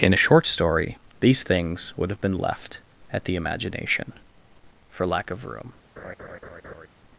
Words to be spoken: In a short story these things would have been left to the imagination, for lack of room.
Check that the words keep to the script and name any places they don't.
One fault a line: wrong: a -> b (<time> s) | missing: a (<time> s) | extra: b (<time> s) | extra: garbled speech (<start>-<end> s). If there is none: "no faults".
wrong: to -> at (3.1 s)